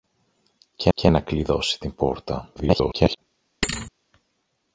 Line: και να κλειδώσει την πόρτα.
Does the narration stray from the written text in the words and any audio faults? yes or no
yes